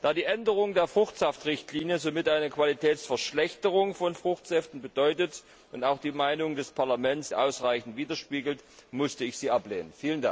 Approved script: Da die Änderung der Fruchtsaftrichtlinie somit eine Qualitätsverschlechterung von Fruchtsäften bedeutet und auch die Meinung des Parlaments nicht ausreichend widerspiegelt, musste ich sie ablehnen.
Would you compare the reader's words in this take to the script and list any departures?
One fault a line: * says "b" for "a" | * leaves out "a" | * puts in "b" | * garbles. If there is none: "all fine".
* leaves out "nicht"